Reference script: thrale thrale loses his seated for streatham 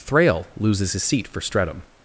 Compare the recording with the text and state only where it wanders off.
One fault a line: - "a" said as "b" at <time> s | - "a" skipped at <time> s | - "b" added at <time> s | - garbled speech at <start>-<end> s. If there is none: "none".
- "thrale" skipped at 0.5 s
- "seated" said as "seat" at 1.0 s